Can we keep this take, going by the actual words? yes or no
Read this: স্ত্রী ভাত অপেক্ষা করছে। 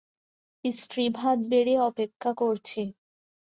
no